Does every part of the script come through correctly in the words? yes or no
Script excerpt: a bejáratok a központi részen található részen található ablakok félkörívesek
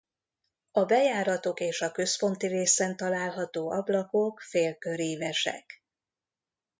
no